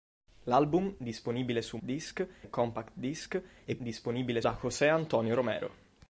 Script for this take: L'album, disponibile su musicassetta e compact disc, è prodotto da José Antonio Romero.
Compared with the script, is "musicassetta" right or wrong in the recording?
wrong